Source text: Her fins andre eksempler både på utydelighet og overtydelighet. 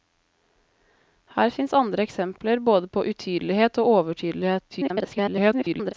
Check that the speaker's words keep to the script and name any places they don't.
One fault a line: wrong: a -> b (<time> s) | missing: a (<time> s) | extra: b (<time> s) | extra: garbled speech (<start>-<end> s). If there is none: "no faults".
extra: garbled speech (4.7-5.9 s)